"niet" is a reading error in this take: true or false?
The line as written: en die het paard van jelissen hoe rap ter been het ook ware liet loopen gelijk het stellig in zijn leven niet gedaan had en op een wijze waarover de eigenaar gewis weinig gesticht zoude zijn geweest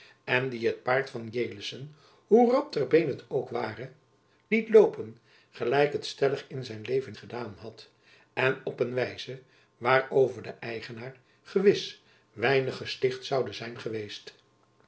true